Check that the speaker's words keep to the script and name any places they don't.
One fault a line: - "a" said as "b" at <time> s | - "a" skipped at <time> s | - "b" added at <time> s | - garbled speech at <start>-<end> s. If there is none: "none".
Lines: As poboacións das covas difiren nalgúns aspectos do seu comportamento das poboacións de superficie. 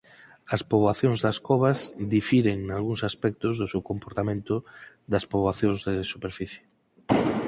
none